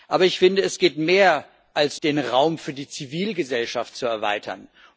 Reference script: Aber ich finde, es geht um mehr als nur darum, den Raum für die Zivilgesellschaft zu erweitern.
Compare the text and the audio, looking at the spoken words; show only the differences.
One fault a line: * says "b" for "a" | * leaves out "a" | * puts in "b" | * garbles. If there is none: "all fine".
* leaves out "nur darum"